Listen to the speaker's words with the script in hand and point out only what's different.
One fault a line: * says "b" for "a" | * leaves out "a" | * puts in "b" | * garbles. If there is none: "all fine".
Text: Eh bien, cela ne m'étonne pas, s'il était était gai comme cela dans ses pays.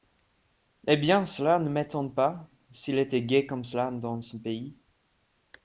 * leaves out "était"
* says "son" for "ses"